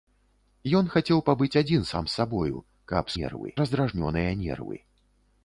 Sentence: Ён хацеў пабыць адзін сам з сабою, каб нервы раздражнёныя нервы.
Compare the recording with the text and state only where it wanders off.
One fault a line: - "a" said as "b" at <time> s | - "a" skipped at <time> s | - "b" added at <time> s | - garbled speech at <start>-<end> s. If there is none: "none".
none